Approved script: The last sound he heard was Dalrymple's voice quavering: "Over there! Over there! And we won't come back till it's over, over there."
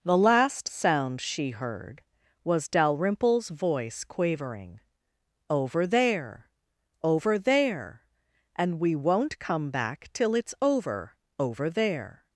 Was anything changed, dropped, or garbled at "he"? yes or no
yes